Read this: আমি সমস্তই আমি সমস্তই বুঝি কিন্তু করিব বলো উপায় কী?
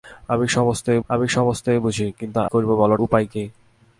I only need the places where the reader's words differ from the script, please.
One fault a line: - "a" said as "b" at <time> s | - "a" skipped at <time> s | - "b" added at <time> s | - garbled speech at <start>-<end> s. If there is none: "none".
none